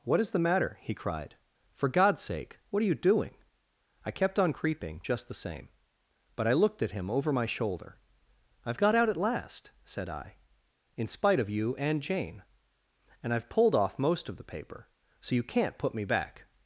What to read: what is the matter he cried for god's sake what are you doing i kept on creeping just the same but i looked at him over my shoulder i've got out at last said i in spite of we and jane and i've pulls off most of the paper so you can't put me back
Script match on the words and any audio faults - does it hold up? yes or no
no